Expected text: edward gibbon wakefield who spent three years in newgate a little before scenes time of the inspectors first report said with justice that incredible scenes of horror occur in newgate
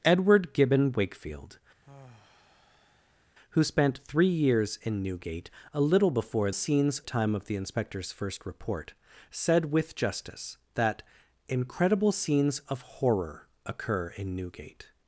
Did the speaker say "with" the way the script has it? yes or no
yes